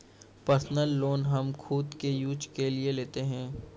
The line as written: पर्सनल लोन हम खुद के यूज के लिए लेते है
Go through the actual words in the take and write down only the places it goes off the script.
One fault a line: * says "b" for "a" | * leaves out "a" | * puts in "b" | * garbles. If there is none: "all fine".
all fine